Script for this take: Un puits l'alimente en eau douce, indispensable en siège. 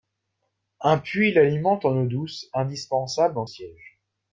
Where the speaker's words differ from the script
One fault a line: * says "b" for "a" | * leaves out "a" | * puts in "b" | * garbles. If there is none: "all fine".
all fine